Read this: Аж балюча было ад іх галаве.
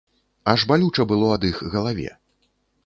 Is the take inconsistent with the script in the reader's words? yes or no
no